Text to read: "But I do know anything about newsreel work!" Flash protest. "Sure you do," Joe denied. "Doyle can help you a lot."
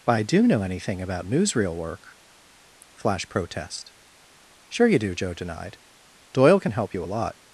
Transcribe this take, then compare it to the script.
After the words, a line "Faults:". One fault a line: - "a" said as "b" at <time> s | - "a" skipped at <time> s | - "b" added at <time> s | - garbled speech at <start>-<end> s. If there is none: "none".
"But I do know anything about newsreel work!" Flash protest. "Sure you do," Joe denied. "Doyle can help you a lot."
Faults:
none